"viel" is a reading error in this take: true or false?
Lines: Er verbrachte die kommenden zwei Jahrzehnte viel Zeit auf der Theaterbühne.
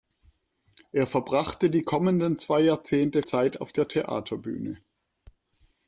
true